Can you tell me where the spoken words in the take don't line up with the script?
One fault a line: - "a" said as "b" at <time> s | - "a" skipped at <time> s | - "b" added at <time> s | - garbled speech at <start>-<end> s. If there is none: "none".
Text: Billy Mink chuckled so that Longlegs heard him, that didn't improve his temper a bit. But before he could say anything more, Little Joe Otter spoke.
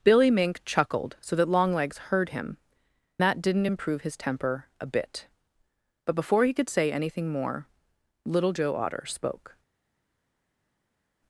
none